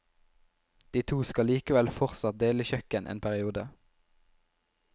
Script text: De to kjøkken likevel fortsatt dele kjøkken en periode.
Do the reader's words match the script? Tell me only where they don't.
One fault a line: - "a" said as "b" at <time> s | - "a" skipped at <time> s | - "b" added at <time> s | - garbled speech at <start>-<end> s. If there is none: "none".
- "kjøkken" said as "skal" at 1.3 s